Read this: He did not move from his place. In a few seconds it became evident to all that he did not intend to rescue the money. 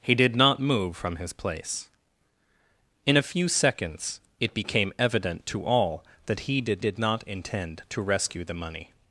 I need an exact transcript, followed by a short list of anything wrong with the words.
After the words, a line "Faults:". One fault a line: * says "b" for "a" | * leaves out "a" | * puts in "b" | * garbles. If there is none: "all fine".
He did not move from his place. In a few seconds it became evident to all that he did did not intend to rescue the money.
Faults:
* puts in "did"